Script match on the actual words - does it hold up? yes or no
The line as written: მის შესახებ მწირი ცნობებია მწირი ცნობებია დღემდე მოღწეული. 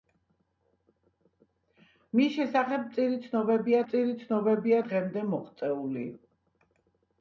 yes